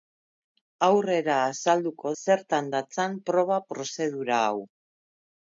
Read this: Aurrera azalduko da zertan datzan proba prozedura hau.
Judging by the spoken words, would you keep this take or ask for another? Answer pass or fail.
fail